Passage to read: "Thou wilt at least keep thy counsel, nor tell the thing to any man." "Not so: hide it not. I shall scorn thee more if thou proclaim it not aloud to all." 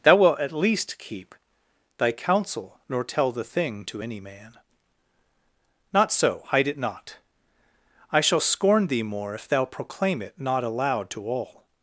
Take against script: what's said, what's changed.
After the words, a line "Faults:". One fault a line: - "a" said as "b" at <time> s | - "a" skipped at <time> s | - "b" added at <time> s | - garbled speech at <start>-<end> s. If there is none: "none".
"Thou wilt at least keep thy counsel, nor tell the thing to any man." "Not so: hide it not. I shall scorn thee more if thou proclaim it not aloud to all."
Faults:
none